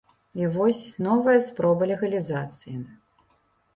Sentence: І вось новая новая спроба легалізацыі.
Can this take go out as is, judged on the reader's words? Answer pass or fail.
fail